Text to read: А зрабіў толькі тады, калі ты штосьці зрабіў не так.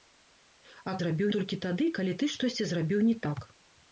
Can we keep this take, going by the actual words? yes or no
yes